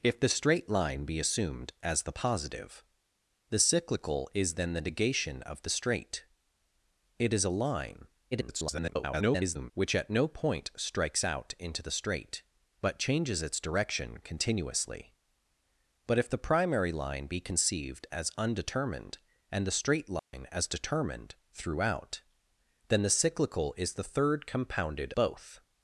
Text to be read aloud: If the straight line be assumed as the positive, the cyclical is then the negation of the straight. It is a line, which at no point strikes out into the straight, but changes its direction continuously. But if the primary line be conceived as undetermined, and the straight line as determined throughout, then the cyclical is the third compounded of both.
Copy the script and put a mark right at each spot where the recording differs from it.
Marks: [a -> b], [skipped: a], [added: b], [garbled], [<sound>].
If the straight line be assumed as the positive, the cyclical is then the negation of the straight. It is a line, [garbled] which at no point strikes out into the straight, but changes its direction continuously. But if the primary line be conceived as undetermined, and the straight line [dropout] as determined throughout, then the cyclical is the third compounded [skipped: of] both.